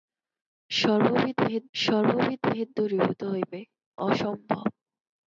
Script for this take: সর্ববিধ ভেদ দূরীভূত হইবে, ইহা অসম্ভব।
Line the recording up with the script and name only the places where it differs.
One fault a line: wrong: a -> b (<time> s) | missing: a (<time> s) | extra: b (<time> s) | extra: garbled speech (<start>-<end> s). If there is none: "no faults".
extra: সর্ববিধ ভেদ (1.7 s)
missing: ইহা (3.6 s)